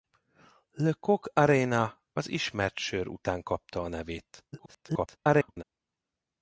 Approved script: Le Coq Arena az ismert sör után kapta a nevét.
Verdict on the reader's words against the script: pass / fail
fail